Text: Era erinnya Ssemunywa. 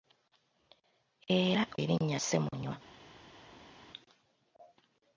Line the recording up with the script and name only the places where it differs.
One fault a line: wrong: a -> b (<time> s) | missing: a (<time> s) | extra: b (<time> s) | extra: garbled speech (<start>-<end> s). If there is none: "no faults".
no faults